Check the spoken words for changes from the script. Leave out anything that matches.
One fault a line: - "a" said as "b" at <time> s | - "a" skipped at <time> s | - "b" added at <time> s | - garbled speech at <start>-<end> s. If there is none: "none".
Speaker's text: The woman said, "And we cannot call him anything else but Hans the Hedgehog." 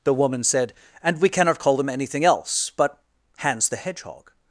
- "him" said as "them" at 1.8 s